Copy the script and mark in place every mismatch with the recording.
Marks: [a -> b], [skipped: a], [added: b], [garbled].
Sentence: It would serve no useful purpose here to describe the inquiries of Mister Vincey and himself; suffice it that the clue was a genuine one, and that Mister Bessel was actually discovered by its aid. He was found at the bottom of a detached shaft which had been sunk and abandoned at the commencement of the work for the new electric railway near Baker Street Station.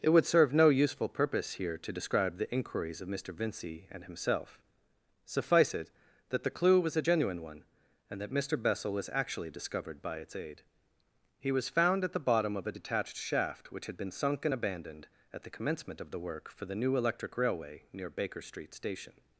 It would serve no useful purpose here to describe the inquiries of Mister Vincey and himself; suffice it that the clue was a genuine one, and that Mister Bessel was actually discovered by its aid. He was found at the bottom of a detached shaft which had been sunk and abandoned at the commencement of the work for the new electric railway near Baker Street Station.